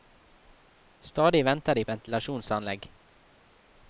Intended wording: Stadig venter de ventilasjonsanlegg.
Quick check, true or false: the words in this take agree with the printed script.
true